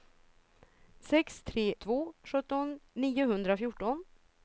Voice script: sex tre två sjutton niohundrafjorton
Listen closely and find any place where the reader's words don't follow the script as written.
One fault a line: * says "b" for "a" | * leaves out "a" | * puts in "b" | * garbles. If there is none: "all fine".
all fine